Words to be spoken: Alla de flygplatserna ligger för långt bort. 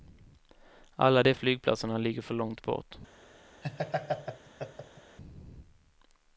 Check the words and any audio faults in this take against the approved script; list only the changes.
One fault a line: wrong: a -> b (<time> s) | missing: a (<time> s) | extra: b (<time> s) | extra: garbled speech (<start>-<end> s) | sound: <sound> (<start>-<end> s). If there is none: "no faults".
sound: laugh (3.6-5.2 s)